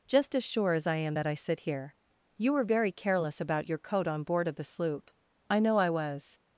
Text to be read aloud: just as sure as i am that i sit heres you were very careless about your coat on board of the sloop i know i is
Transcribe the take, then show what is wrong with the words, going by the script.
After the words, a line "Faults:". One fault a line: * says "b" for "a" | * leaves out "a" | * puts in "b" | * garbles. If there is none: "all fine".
just as sure as i am that i sit here you were very careless about your coat on board of the sloop i know i was
Faults:
* says "here" for "heres"
* says "was" for "is"